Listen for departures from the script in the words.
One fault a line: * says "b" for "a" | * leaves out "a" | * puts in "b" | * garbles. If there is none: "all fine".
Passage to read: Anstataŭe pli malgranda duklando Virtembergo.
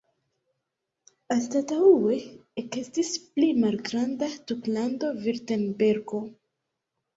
* puts in "ekestis"